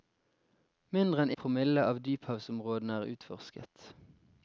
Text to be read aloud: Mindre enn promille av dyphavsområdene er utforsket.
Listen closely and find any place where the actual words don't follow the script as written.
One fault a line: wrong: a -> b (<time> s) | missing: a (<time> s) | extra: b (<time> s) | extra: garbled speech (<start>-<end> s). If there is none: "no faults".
no faults